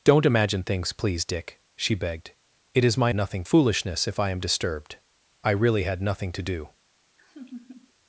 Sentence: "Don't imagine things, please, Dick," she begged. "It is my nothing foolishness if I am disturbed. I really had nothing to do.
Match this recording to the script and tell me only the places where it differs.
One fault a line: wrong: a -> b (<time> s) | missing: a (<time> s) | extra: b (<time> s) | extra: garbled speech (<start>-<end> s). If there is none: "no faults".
no faults